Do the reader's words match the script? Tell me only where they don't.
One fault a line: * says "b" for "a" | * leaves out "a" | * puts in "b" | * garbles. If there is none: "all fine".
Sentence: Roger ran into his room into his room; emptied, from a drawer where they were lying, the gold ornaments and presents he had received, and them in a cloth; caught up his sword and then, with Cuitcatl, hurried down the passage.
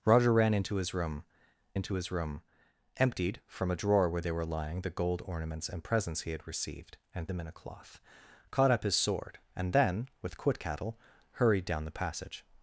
all fine